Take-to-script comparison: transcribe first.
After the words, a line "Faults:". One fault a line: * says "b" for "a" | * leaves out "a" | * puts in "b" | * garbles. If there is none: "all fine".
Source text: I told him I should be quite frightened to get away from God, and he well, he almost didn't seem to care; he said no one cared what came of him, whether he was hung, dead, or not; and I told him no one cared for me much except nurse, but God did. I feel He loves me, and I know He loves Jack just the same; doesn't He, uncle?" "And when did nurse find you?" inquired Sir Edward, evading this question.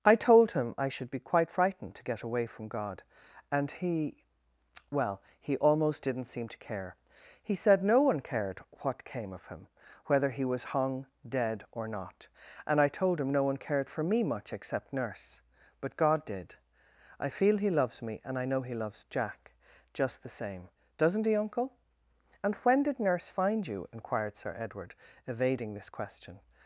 I told him I should be quite frightened to get away from God, and he well, he almost didn't seem to care; he said no one cared what came of him, whether he was hung, dead, or not; and I told him no one cared for me much except nurse, but God did. I feel He loves me, and I know He loves Jack just the same; doesn't He, uncle?" "And when did nurse find you?" inquired Sir Edward, evading this question.
Faults:
all fine